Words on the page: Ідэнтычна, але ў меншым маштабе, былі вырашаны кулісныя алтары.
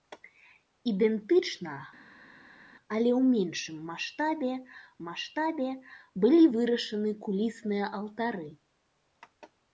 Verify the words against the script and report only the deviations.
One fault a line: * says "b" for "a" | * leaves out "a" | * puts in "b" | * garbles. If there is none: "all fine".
* puts in "маштабе"